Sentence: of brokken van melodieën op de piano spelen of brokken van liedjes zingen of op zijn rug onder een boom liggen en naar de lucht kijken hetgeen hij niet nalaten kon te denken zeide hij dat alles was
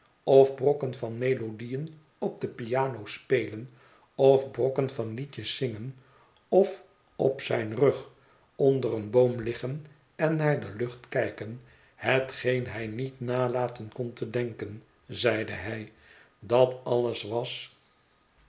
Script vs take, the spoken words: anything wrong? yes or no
no